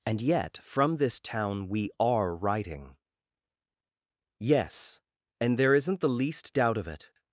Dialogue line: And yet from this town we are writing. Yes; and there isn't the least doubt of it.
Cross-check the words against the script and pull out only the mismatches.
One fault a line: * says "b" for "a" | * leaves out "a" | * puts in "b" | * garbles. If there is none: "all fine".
all fine